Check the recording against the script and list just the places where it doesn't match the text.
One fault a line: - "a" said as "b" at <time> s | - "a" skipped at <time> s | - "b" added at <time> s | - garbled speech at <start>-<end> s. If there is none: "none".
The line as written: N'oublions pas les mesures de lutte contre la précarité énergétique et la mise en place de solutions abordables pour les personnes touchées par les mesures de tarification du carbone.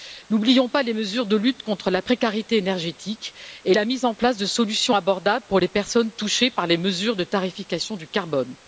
none